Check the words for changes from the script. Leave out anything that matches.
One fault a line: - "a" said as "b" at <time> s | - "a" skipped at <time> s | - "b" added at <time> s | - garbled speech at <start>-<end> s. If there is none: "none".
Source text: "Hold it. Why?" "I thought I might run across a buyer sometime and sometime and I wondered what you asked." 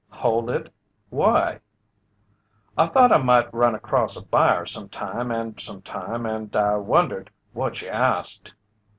none